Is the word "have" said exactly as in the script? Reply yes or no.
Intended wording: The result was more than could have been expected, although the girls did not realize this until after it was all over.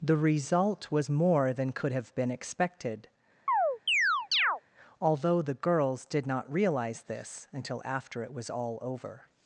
yes